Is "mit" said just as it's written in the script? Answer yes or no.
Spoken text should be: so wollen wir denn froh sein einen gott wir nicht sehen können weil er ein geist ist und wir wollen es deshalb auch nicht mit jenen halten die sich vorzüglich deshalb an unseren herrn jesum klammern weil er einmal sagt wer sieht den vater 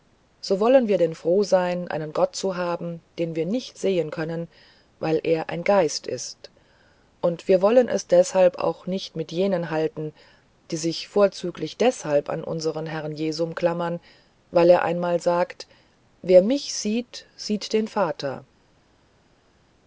yes